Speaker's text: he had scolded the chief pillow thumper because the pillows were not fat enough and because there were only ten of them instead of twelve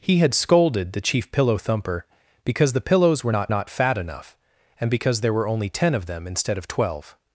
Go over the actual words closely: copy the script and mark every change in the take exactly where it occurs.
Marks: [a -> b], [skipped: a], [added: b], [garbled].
he had scolded the chief pillow thumper because the pillows were not [added: not] fat enough and because there were only ten of them instead of twelve